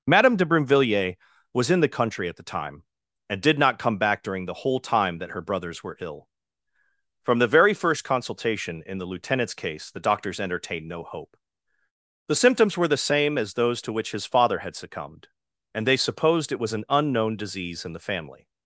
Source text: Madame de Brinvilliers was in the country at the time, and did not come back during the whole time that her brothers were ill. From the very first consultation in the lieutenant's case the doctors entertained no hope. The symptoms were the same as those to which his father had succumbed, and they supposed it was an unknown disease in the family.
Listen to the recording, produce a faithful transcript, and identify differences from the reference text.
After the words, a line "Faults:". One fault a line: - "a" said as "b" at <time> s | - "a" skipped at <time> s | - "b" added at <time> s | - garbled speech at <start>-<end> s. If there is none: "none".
Madame de Brinvilliers was in the country at the time, and did not come back during the whole time that her brothers were ill. From the very first consultation in the lieutenant's case the doctors entertained no hope. The symptoms were the same as those to which his father had succumbed, and they supposed it was an unknown disease in the family.
Faults:
none